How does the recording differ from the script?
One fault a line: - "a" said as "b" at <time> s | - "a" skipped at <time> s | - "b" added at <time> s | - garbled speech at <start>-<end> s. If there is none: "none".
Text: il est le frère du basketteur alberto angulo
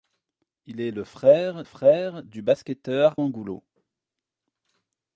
- "frère" added at 1.6 s
- "alberto" skipped at 3.1 s